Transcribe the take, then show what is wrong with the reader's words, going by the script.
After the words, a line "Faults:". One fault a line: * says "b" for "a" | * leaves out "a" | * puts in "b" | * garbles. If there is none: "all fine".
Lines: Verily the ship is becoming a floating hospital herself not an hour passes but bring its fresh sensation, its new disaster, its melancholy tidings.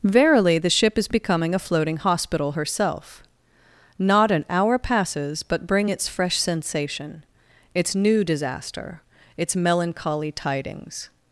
Verily the ship is becoming a floating hospital herself not an hour passes but bring its fresh sensation, its new disaster, its melancholy tidings.
Faults:
all fine